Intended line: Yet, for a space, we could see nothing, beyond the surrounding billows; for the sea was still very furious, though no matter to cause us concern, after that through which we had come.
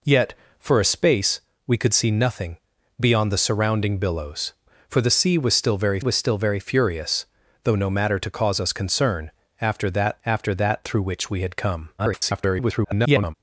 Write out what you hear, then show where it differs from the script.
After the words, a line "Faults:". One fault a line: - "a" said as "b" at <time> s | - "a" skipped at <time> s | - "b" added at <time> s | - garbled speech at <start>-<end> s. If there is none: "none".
Yet, for a space, we could see nothing, beyond the surrounding billows; for the sea was still very was still very furious, though no matter to cause us concern, after that after that through which we had come. [garbled]
Faults:
- "was still very" added at 6.0 s
- "after that" added at 10.3 s
- garbled speech at 12.0-13.3 s